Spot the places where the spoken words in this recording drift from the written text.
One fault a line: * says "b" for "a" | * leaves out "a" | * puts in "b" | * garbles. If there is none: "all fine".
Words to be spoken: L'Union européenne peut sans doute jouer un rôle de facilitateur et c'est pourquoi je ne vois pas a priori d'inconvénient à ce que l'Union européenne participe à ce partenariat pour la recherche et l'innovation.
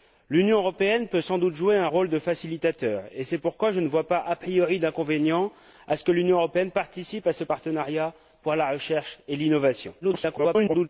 * garbles